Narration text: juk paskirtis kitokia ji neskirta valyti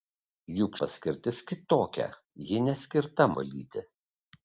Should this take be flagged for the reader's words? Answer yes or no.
no